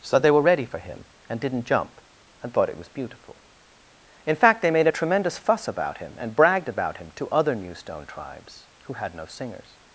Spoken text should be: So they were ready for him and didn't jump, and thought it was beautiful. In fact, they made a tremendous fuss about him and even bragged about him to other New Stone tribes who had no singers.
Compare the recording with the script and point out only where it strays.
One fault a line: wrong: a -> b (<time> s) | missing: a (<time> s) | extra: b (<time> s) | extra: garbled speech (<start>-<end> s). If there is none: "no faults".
missing: even (6.3 s)